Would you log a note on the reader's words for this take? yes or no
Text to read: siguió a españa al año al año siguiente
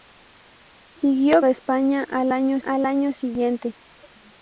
no